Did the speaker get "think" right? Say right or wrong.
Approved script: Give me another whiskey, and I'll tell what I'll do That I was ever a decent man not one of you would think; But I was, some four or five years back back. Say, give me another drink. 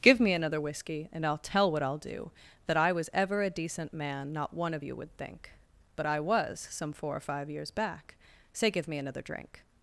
right